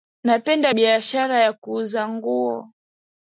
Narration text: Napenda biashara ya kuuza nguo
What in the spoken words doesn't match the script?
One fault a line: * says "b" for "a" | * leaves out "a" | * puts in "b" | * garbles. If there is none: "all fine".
all fine